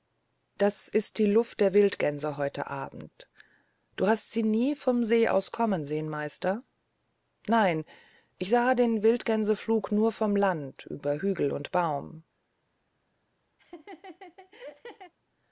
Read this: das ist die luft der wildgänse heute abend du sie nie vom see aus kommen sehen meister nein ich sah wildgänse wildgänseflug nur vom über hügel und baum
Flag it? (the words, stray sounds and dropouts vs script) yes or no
yes